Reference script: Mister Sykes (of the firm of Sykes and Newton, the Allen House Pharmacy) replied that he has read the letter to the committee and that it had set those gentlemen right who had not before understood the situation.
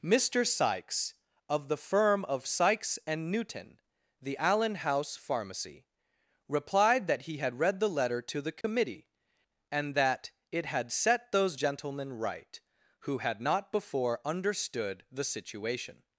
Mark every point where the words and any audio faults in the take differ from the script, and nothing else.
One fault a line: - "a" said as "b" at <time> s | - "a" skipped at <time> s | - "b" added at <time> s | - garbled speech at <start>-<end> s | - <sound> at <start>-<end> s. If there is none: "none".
- "has" said as "had" at 7.4 s
- dropout at 8.6-8.6 s